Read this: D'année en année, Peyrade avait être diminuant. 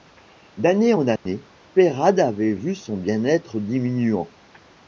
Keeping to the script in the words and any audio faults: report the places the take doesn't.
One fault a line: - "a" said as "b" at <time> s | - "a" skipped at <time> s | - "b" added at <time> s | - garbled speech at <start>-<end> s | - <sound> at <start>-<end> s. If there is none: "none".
- dropout at 1.2-1.3 s
- "vu son bien" added at 2.5 s